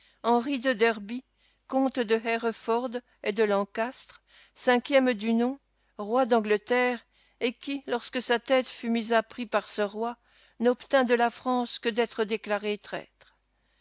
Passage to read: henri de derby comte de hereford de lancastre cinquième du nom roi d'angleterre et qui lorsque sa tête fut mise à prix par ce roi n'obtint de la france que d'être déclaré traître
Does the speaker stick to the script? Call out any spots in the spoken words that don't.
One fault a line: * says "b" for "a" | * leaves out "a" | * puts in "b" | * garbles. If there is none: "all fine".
* puts in "et"